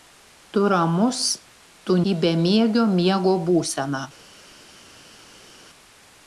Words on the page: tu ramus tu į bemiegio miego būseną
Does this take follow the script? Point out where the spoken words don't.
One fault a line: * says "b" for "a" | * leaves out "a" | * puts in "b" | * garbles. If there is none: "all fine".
all fine